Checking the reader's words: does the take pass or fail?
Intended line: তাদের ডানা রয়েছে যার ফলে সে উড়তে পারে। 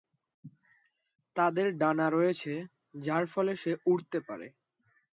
pass